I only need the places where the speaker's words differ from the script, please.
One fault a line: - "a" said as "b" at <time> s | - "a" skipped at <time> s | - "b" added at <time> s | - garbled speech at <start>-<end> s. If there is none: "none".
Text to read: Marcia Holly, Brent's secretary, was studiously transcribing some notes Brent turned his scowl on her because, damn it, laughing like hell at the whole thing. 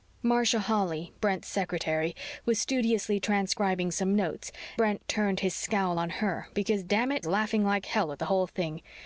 none